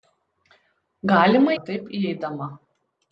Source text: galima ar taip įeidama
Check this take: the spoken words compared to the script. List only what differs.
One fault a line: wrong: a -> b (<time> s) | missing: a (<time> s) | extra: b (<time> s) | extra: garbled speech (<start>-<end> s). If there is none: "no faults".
no faults